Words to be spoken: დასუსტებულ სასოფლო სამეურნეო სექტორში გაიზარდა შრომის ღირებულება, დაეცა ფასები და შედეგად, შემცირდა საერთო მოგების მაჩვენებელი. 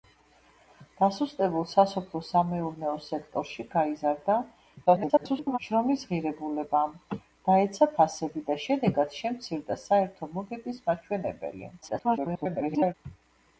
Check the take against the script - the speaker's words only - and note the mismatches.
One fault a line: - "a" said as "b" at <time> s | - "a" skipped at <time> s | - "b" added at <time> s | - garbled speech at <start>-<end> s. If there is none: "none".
- garbled speech at 4.9-5.6 s
- garbled speech at 11.8-12.9 s